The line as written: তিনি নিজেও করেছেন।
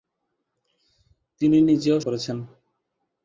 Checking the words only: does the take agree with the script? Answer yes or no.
yes